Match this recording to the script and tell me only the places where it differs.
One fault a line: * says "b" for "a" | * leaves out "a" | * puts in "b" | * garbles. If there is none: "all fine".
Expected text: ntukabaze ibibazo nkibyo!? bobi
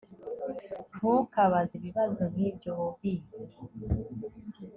all fine